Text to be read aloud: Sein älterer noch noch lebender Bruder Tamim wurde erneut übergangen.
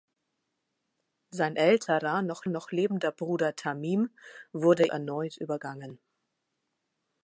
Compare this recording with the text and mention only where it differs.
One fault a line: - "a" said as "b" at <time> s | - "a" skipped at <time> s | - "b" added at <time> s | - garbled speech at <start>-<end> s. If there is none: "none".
none